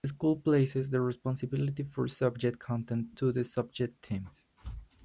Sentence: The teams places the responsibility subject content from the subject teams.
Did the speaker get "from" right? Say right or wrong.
wrong